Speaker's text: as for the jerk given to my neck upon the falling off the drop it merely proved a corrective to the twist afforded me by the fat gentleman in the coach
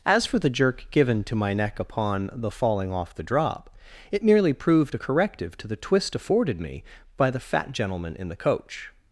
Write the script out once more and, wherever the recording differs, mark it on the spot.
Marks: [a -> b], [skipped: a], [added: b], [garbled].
as for the jerk given to my neck upon the falling off the drop it merely proved a corrective to the twist afforded me by the fat gentleman in the coach